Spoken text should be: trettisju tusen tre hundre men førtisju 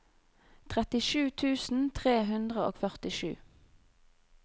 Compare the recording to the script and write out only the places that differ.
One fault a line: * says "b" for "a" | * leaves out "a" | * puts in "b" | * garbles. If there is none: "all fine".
* says "og" for "men"